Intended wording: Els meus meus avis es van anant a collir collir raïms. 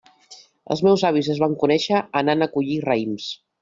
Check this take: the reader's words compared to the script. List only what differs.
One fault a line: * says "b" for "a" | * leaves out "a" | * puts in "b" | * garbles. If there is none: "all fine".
* leaves out "meus"
* puts in "conèixer"
* leaves out "collir"